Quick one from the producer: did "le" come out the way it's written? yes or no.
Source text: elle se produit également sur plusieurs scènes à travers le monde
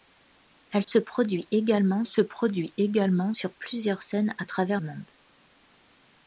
no